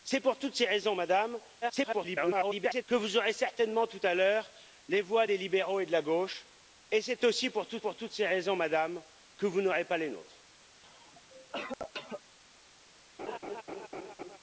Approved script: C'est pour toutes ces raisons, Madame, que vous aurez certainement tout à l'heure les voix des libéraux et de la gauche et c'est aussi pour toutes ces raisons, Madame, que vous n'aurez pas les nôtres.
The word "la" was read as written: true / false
true